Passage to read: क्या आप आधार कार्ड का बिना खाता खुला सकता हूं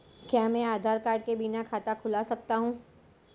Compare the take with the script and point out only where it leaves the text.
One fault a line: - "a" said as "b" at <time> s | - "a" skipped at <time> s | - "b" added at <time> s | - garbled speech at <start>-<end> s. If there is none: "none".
- "आप" said as "मैं" at 0.5 s
- "का" said as "के" at 1.2 s